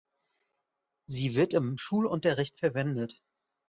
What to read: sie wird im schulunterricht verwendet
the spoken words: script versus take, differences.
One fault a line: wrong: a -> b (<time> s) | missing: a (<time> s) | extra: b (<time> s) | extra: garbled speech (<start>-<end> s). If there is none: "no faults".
no faults